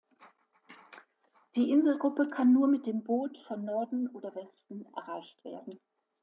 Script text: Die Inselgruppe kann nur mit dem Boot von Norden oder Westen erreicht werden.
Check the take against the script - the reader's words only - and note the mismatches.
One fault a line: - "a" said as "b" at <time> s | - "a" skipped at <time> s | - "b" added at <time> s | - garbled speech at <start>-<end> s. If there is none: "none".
none